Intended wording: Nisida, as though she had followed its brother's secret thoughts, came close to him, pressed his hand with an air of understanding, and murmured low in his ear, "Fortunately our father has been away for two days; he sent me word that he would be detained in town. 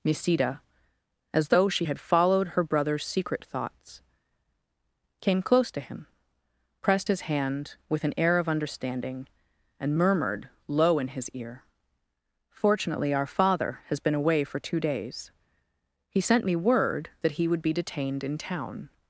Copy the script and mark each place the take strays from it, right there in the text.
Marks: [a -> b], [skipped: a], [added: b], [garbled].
Nisida, as though she had followed [its -> her] brother's secret thoughts, came close to him, pressed his hand with an air of understanding, and murmured low in his ear, "Fortunately our father has been away for two days; he sent me word that he would be detained in town.